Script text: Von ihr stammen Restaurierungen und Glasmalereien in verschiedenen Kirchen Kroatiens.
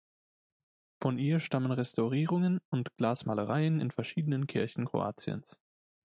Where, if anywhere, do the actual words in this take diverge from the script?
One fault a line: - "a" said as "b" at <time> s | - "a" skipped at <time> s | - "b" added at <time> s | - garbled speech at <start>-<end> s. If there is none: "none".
none